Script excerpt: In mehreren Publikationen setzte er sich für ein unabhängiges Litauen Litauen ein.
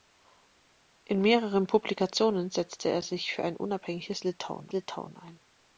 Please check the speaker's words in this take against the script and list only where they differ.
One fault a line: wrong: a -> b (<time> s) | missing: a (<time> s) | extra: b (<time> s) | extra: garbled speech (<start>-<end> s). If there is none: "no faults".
no faults